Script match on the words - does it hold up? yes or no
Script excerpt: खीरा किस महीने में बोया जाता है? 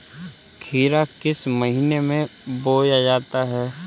yes